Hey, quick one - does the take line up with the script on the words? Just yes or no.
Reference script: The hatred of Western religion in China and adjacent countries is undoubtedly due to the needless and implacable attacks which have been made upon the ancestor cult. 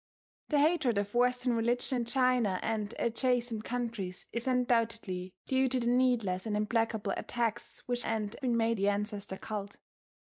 no